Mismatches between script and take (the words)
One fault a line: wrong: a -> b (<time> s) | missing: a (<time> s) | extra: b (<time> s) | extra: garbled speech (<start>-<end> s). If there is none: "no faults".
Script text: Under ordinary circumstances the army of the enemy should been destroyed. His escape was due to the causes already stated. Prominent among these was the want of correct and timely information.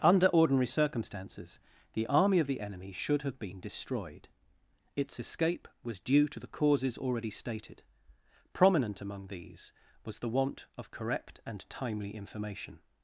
extra: have (3.2 s)
wrong: His -> Its (5.0 s)